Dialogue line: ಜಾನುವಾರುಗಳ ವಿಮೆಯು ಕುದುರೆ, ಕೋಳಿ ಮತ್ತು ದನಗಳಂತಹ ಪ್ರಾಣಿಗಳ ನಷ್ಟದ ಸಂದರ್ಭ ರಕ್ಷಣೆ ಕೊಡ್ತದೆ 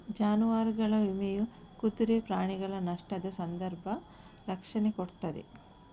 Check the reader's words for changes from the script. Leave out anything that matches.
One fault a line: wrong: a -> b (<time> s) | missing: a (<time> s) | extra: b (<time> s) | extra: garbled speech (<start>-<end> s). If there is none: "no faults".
missing: ಕೋಳಿ ಮತ್ತು ದನಗಳಂತಹ (2.2 s)